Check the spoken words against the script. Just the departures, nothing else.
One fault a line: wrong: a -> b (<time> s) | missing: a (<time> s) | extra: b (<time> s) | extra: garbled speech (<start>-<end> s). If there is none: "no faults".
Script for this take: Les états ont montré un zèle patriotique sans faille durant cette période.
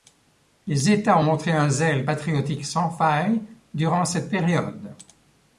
no faults